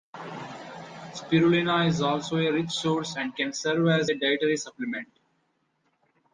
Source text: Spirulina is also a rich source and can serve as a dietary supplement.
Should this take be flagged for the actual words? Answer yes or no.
no